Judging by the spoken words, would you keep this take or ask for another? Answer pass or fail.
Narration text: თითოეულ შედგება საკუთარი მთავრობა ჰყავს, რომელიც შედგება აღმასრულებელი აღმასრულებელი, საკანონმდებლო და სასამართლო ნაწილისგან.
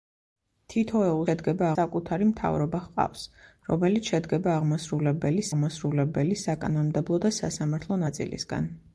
pass